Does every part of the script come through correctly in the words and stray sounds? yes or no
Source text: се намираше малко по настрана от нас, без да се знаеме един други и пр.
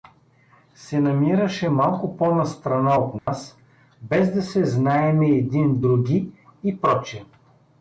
no